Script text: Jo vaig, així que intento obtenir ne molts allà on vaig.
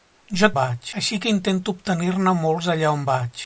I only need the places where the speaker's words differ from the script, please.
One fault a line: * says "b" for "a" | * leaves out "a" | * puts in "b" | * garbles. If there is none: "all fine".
all fine